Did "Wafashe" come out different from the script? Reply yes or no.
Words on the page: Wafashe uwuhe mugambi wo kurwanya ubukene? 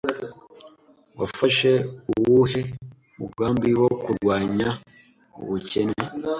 no